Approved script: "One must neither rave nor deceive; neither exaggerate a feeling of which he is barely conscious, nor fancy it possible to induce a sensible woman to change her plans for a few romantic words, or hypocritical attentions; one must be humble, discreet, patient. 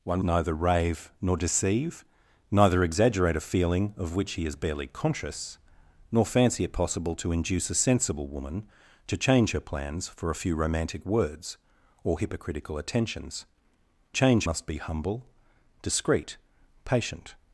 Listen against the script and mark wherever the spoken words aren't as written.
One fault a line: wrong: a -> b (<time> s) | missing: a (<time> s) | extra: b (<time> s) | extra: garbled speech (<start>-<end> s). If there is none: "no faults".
missing: must (0.2 s)
wrong: one -> change (14.1 s)